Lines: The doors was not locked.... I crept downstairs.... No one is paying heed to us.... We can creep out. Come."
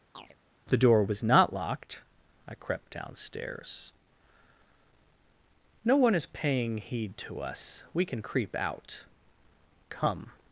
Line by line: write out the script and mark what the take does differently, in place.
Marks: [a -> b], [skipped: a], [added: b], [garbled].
The [doors -> door] was not locked.... I crept downstairs.... No one is paying heed to us.... We can creep out. Come."